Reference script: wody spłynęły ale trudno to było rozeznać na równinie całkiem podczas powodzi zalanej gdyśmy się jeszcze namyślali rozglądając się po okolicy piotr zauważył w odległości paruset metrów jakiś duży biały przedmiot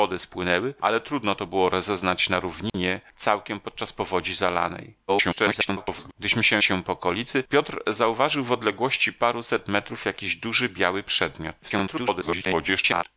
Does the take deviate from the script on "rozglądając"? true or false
true